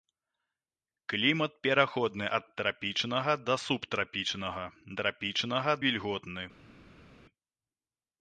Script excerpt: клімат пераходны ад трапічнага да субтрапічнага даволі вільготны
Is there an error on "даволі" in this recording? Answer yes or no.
yes